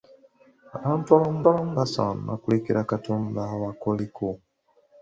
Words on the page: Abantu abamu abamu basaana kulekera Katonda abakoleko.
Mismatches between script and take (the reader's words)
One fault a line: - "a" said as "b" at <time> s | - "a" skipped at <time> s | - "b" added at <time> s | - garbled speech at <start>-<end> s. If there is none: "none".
none